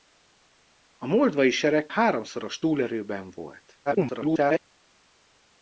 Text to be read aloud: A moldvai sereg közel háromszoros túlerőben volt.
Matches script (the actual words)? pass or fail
fail